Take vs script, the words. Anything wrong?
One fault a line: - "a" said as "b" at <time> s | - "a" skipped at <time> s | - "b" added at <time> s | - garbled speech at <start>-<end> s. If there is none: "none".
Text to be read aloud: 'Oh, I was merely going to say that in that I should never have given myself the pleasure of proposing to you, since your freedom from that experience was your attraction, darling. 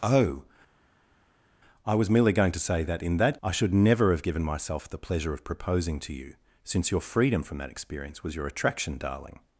none